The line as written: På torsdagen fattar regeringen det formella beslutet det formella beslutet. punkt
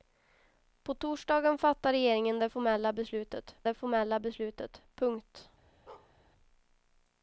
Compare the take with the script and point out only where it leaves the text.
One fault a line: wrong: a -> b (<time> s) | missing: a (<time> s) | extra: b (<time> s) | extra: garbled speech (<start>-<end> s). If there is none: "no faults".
no faults